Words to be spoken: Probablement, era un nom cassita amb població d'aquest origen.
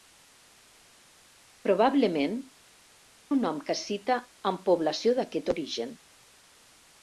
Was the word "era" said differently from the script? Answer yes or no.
yes